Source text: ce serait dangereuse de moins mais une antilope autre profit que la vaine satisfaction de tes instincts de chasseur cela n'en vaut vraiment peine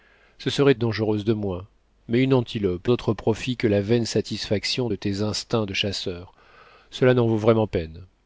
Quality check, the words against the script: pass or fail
pass